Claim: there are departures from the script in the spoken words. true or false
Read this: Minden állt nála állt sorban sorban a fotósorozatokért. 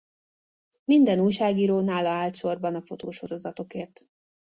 true